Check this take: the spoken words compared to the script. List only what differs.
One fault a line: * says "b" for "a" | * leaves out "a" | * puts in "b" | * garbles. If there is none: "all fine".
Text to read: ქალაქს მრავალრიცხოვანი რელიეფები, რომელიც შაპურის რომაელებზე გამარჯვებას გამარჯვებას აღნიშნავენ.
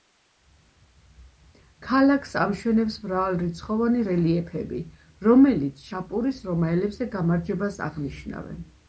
* puts in "ამშვენებს"
* leaves out "გამარჯვებას"